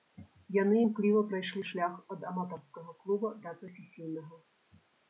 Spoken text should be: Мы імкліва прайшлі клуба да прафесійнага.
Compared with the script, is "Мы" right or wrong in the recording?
wrong